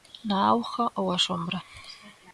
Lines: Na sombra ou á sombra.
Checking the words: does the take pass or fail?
fail